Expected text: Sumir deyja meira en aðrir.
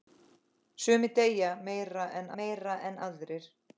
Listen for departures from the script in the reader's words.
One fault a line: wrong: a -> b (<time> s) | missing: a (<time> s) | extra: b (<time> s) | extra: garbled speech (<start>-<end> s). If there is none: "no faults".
extra: meira en (2.4 s)